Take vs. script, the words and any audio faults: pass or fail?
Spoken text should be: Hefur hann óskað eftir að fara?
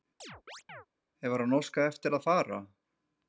fail